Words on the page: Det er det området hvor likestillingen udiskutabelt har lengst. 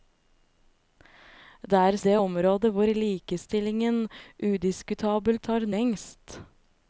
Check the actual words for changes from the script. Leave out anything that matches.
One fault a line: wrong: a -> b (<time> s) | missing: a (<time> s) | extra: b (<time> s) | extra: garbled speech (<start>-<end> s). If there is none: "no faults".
no faults